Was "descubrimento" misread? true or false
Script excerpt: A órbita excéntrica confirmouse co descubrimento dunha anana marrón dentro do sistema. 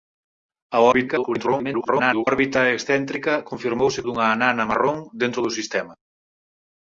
true